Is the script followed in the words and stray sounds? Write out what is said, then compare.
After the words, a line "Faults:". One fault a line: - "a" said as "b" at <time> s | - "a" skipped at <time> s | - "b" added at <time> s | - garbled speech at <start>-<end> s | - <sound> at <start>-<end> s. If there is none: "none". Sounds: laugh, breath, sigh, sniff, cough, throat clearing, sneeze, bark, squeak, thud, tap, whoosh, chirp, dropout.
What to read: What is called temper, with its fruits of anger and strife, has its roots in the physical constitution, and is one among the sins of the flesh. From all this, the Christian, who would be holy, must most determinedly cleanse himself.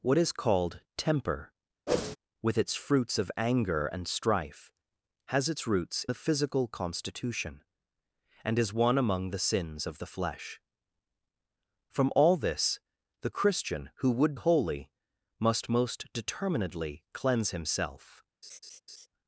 What is called temper, with its fruits of anger and strife, has its roots the physical constitution, and is one among the sins of the flesh. From all this, the Christian, who would holy, must most determinedly cleanse himself.
Faults:
- whoosh at 1.9-2.2 s
- "in" skipped at 6.0 s
- "be" skipped at 14.3 s
- laugh at 18.4-19.1 s